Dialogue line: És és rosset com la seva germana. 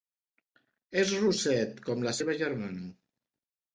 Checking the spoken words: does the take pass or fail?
fail